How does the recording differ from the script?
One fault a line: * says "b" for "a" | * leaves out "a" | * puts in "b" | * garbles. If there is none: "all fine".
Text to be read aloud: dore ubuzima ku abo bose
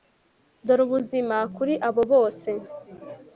* says "kuri" for "ku"